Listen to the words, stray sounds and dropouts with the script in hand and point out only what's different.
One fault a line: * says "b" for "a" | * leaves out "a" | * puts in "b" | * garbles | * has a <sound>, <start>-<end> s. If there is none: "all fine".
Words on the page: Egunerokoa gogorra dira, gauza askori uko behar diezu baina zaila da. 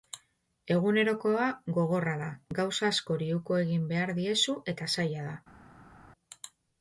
* says "da" for "dira"
* puts in "egin"
* says "eta" for "baina"